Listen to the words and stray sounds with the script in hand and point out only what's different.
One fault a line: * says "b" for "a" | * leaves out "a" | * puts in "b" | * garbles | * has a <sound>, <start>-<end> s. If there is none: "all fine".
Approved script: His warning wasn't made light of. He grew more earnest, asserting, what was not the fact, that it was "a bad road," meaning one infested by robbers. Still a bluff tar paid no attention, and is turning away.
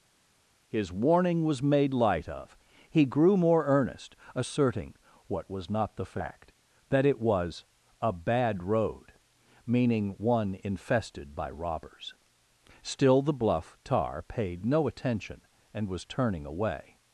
* says "was" for "wasn't"
* says "the" for "a"
* says "was" for "is"